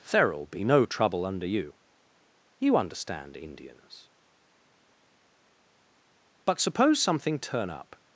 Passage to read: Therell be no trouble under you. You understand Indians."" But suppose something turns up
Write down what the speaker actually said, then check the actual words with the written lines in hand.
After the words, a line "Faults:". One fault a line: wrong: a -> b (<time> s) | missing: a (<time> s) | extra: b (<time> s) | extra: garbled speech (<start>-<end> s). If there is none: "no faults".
Therell be no trouble under you. You understand Indians."" But suppose something turn up
Faults:
wrong: turns -> turn (7.4 s)